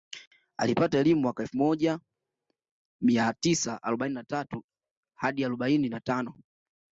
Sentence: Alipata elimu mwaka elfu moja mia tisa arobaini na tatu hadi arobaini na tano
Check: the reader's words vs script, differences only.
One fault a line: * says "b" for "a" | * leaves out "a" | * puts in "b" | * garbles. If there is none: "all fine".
all fine